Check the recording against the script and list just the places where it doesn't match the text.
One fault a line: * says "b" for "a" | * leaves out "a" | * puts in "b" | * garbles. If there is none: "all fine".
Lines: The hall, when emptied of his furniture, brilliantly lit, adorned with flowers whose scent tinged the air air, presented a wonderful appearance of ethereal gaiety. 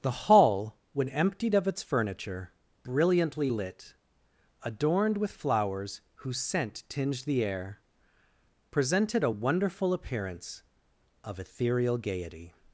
* says "its" for "his"
* leaves out "air"